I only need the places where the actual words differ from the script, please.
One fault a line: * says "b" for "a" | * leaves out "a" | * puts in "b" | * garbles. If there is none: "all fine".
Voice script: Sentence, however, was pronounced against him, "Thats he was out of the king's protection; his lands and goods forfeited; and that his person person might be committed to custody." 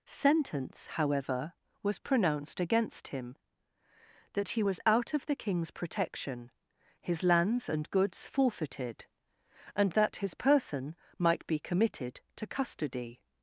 * says "That" for "Thats"
* leaves out "person"